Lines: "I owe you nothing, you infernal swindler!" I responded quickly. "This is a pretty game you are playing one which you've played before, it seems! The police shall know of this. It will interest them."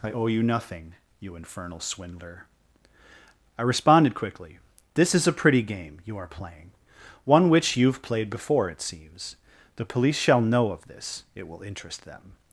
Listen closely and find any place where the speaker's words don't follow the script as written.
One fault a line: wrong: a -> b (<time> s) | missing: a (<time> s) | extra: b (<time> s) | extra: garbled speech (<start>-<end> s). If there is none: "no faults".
no faults